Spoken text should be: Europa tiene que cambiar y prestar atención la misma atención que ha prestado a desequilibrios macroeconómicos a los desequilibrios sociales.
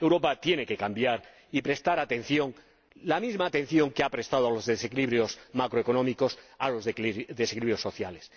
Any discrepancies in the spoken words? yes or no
yes